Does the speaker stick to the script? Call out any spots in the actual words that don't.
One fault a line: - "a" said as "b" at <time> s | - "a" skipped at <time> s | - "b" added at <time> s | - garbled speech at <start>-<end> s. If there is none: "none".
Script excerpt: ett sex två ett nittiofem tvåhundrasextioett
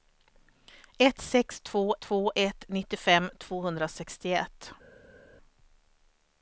- "två" added at 2.0 s